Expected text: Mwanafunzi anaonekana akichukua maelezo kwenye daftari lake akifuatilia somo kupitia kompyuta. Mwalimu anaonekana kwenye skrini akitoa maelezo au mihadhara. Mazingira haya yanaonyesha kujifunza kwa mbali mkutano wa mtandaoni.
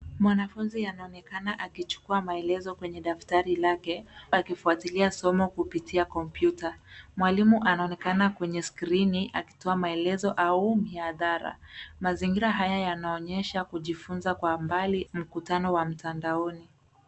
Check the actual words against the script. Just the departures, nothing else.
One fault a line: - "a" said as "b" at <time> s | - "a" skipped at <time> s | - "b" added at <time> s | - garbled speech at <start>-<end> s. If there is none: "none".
none